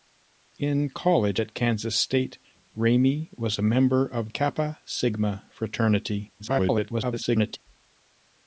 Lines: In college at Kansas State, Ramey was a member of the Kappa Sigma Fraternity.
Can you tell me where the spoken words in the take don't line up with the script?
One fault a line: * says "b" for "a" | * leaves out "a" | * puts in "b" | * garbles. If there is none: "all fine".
* leaves out "the"
* garbles